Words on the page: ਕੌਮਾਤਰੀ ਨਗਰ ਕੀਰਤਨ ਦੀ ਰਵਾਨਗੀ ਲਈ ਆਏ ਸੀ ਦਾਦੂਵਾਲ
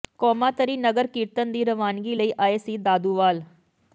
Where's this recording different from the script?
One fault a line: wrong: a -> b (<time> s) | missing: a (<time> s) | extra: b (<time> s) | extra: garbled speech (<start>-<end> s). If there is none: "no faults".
no faults